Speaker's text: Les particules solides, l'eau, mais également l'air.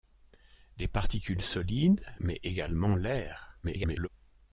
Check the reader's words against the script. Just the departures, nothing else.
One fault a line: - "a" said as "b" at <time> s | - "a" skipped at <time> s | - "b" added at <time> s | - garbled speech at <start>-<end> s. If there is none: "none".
- "l'eau" skipped at 2.0 s
- garbled speech at 3.6-4.1 s